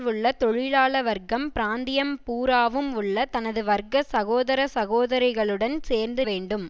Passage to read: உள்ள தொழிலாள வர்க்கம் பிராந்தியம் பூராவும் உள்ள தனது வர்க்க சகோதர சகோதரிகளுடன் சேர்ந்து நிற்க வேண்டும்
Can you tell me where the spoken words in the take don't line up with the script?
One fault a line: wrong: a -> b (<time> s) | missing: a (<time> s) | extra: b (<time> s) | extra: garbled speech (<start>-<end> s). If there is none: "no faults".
missing: நிற்க (6.2 s)